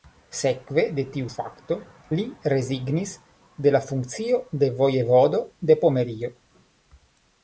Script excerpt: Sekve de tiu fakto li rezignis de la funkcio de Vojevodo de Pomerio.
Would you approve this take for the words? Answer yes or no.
yes